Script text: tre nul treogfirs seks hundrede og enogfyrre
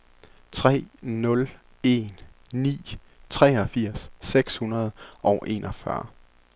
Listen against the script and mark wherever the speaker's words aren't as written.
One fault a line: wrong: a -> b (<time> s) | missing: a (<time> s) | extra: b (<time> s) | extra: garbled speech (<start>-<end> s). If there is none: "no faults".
extra: en ni (1.8 s)